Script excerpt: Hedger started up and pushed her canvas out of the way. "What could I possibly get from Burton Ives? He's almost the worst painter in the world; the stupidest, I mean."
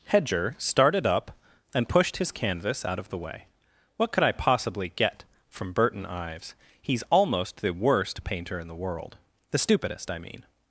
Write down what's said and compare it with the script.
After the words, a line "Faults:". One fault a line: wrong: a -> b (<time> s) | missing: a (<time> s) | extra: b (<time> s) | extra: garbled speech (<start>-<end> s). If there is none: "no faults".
Hedger started up and pushed his canvas out of the way. "What could I possibly get from Burton Ives? He's almost the worst painter in the world; the stupidest, I mean."
Faults:
wrong: her -> his (2.2 s)